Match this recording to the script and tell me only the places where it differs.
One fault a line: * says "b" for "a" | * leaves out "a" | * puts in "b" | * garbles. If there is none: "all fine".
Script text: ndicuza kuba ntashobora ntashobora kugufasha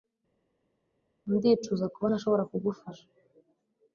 * leaves out "ntashobora"